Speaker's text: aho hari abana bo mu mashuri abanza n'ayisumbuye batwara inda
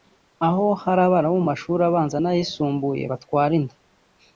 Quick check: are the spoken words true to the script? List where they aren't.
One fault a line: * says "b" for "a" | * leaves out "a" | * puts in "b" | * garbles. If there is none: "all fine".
all fine